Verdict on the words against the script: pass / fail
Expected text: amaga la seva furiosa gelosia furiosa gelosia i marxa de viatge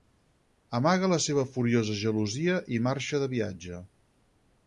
fail